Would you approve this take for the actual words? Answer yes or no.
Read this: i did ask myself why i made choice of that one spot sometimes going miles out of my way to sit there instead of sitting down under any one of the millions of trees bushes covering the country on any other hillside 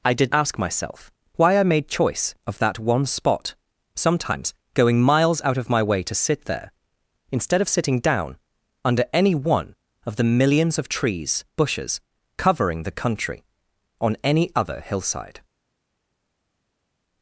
yes